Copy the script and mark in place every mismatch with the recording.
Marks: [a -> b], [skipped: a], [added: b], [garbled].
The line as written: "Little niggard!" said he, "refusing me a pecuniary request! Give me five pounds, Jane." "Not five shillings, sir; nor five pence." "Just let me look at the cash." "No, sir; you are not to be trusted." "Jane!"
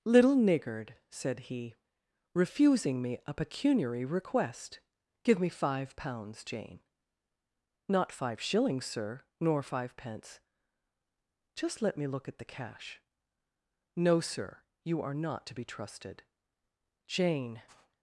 "Little niggard!" said he, "refusing me a pecuniary request! Give me five pounds, Jane." "Not five shillings, sir; nor five pence." "Just let me look at the cash." "No, sir; you are not to be trusted." "Jane!"